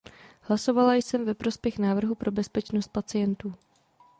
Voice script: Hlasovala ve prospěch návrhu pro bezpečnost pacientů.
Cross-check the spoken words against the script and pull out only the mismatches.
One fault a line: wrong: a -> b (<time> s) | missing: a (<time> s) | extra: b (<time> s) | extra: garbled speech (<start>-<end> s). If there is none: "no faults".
extra: jsem (0.9 s)